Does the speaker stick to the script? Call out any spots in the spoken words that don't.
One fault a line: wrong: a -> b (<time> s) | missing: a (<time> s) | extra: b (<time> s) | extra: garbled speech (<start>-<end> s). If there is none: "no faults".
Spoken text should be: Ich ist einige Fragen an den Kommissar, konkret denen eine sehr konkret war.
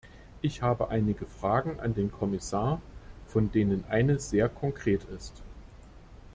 wrong: ist -> habe (0.6 s)
wrong: konkret -> von (3.3 s)
wrong: war -> ist (5.1 s)